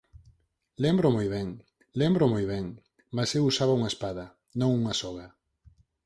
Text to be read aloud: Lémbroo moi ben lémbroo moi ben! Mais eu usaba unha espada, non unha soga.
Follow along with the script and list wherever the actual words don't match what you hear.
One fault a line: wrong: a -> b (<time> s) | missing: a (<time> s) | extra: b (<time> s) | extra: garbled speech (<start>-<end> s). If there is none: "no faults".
no faults